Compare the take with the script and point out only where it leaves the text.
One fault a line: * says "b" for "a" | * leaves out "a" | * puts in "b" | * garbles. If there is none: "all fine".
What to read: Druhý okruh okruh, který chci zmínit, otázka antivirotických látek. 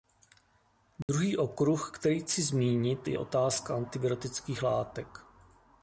* leaves out "okruh"
* puts in "je"